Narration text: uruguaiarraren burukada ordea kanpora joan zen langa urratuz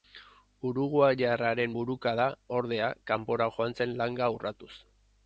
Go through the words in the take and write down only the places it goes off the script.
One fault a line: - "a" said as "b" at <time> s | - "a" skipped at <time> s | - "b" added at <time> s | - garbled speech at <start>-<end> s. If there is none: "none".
none